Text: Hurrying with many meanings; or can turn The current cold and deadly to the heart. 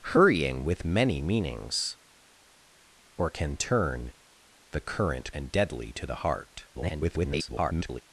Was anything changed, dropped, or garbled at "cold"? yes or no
yes